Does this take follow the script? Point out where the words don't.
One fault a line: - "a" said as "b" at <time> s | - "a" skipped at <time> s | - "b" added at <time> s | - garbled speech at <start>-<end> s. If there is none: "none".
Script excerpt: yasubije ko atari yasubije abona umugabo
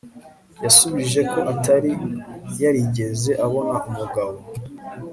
- "yasubije" said as "yarigeze" at 2.6 s